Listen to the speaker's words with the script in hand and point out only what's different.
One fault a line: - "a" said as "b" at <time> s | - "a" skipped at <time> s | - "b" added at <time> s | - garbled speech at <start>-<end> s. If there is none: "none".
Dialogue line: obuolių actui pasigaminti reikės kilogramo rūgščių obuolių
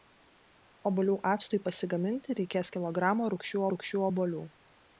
- "rūgščių" added at 3.7 s